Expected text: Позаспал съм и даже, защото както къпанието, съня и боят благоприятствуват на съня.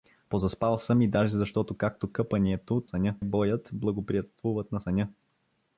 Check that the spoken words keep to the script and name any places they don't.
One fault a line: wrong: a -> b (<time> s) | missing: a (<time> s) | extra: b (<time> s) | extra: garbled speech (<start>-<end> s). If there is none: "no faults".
no faults